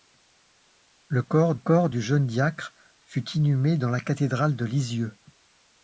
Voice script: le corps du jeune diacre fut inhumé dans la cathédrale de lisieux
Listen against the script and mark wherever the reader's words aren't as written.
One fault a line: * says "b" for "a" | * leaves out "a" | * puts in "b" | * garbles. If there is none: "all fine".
* puts in "corps"